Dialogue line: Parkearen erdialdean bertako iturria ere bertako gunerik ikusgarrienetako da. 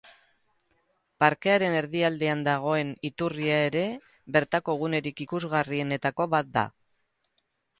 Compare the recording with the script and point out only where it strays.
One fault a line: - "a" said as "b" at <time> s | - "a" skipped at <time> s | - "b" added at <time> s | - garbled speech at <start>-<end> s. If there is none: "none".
- "bertako" said as "dagoen" at 2.5 s
- "bat" added at 6.4 s